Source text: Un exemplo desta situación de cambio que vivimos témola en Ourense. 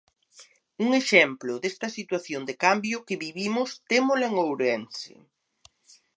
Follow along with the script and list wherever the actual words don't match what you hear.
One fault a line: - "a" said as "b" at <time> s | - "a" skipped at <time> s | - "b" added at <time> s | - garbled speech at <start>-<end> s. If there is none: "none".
none